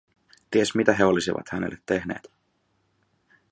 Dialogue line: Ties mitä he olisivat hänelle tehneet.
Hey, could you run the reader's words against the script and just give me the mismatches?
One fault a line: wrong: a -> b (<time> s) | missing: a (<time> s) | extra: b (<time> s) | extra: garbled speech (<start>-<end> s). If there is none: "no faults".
no faults